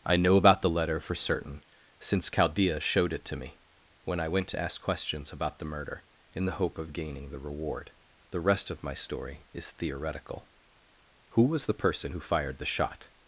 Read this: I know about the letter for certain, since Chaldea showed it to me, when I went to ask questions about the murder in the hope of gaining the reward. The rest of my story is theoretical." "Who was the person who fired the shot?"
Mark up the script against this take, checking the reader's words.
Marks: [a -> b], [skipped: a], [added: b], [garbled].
I know about the letter for certain, since Chaldea showed it to me, when I went to ask questions about the murder in the hope of gaining the reward. The rest of my story is theoretical." "Who was the person who fired the shot?"